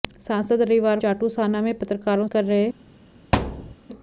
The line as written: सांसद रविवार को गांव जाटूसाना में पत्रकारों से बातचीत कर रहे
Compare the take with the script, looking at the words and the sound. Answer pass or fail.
fail